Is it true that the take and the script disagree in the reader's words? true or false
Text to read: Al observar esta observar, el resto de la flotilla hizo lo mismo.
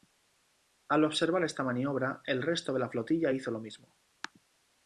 true